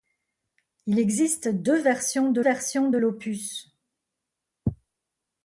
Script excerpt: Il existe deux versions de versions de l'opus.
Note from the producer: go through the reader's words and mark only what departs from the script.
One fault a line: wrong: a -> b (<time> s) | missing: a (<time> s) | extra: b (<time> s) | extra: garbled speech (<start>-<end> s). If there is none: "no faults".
no faults